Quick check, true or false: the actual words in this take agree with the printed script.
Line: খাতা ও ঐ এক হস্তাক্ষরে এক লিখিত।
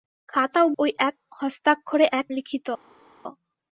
true